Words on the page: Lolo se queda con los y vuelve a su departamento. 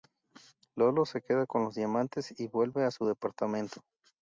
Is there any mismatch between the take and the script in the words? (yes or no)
yes